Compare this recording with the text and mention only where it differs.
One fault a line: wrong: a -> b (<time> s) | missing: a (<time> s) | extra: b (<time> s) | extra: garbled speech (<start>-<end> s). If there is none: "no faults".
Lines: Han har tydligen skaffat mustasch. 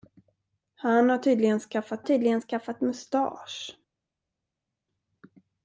extra: tydligen skaffat (2.0 s)